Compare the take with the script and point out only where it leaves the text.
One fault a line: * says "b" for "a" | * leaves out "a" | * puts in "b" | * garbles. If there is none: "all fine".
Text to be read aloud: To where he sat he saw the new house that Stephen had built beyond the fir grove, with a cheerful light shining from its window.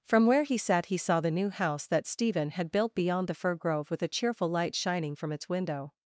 * says "From" for "To"